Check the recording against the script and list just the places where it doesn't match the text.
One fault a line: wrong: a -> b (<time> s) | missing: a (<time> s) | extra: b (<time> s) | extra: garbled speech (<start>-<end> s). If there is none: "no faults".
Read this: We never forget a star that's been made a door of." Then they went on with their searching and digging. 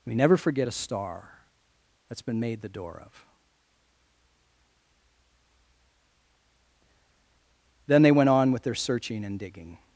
wrong: a -> the (2.6 s)